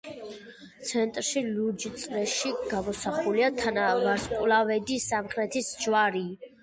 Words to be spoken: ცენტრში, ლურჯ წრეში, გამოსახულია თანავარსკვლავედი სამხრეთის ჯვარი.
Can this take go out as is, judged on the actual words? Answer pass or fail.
pass